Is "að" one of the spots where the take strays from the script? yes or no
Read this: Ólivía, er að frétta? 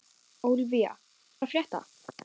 no